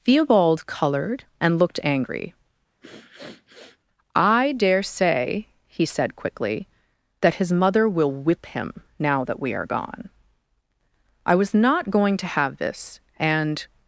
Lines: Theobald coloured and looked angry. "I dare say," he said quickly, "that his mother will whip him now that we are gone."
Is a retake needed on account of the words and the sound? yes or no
yes